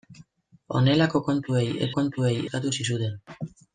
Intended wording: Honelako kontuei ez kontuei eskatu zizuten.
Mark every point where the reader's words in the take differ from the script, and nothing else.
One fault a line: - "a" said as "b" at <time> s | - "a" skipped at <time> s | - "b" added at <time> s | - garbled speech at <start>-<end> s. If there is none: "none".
none